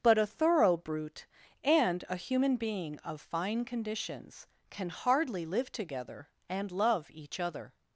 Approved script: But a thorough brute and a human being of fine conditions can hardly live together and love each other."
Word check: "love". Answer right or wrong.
right